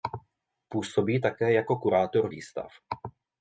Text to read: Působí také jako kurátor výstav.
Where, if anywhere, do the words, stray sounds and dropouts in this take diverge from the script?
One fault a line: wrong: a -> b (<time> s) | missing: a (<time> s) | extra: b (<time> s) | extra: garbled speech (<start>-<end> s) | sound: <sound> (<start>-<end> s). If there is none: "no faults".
no faults